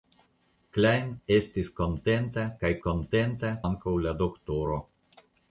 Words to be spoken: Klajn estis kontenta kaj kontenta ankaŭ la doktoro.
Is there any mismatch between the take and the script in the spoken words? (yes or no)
no